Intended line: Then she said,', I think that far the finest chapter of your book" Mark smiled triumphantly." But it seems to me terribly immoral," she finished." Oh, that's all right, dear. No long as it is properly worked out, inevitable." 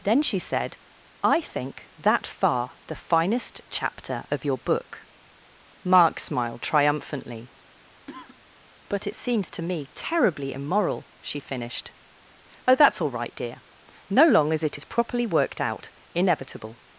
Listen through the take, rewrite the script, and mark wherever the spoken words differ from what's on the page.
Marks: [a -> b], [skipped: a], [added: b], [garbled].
Then she said,', I think that far the finest chapter of your book" Mark smiled triumphantly." But it seems to me terribly immoral," she finished." Oh, that's all right, dear. No long as it is properly worked out, inevitable."